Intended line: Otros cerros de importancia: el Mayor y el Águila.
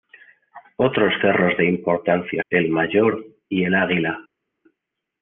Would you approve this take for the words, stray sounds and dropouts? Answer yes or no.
yes